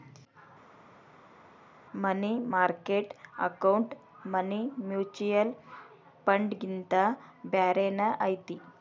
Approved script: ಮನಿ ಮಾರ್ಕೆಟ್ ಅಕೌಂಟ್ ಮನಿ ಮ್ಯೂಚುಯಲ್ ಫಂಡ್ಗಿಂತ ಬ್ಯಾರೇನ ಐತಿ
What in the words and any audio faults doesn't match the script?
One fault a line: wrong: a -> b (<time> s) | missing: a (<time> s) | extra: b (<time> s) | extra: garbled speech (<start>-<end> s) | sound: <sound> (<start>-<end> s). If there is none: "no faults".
no faults